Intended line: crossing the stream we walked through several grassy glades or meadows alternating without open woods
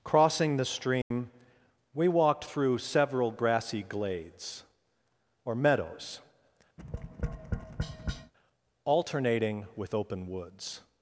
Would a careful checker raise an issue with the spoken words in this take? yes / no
yes